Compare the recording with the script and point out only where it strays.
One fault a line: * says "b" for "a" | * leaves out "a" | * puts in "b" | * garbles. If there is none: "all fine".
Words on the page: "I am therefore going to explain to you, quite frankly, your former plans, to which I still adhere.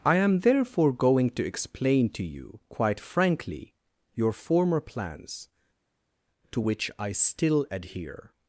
all fine